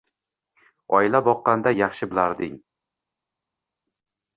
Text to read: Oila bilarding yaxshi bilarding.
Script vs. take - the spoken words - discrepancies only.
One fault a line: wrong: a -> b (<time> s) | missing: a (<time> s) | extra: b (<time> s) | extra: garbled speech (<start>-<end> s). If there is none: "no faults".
wrong: bilarding -> boqqanda (1.3 s)